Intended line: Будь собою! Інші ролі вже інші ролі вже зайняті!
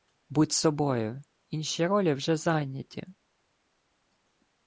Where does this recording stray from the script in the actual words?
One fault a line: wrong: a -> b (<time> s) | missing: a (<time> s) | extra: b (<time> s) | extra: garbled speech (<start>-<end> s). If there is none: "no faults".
missing: інші ролі вже (2.4 s)